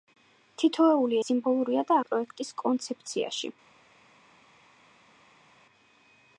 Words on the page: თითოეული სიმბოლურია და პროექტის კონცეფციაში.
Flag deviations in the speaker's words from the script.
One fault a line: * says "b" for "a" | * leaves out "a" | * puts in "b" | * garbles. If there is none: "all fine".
all fine